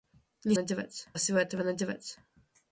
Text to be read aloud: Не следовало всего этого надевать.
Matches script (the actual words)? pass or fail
fail